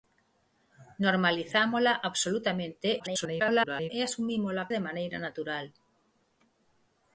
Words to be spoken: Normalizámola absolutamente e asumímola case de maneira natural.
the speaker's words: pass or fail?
fail